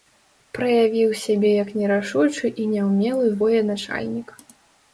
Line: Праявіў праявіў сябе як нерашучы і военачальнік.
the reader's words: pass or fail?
fail